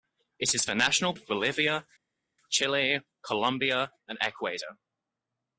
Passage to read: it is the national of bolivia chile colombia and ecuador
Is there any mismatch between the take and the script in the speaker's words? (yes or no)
no